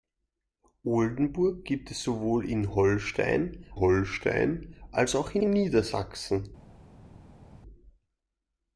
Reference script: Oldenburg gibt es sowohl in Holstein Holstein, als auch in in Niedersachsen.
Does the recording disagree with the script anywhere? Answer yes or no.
no